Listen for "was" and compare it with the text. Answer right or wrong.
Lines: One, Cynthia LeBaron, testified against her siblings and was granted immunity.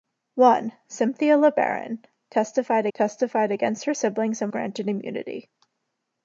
wrong